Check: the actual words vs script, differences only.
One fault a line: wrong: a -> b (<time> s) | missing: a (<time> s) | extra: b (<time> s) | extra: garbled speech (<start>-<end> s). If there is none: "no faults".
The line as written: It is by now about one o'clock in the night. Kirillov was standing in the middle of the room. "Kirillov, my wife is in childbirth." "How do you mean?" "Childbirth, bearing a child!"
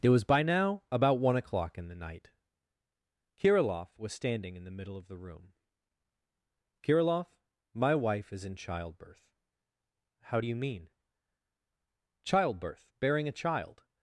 wrong: is -> was (0.1 s)